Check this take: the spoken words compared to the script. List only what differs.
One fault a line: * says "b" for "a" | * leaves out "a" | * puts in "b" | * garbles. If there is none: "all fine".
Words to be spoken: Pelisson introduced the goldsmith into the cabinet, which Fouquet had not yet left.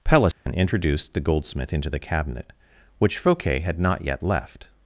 all fine